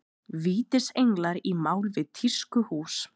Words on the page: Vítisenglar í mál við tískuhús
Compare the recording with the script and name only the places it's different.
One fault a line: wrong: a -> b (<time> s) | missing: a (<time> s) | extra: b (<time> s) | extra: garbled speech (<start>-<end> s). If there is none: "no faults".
no faults